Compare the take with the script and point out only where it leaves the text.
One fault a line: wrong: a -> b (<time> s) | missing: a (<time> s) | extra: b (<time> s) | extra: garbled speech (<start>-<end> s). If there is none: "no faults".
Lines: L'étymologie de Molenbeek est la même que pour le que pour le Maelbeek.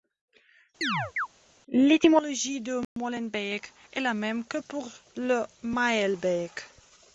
missing: que pour le (5.4 s)